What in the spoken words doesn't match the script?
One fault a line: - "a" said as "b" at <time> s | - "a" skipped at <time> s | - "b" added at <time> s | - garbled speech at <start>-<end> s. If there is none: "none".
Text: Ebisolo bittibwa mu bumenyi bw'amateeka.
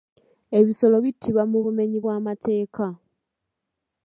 none